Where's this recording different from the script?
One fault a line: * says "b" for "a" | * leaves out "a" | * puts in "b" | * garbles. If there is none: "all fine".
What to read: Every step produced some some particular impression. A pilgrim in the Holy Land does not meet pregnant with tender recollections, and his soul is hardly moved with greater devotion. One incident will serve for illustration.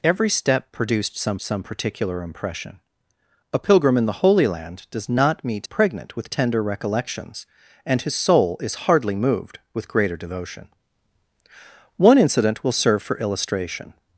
all fine